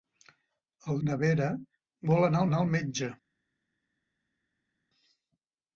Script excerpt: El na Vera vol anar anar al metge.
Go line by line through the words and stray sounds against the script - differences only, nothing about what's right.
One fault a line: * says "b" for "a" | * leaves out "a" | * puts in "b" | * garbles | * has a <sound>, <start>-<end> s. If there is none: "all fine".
all fine